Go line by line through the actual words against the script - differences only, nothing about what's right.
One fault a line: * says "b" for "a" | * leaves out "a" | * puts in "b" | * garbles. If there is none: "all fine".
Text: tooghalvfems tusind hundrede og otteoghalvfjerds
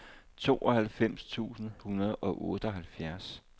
all fine